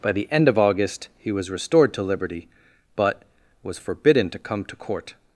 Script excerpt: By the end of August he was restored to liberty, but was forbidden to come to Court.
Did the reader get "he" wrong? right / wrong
right